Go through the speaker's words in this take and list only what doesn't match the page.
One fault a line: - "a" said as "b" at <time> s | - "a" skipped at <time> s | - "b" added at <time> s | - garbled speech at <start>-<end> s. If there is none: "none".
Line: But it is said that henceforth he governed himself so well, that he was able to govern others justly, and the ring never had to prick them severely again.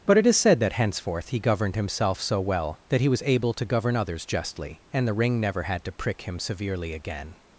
- "them" said as "him" at 6.2 s